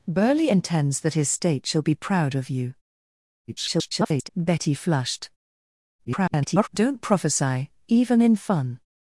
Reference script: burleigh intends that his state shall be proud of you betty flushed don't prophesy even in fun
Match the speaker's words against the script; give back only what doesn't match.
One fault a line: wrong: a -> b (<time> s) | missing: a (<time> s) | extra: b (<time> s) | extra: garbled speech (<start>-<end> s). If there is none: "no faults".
extra: garbled speech (3.5-4.3 s)
extra: garbled speech (6.0-6.7 s)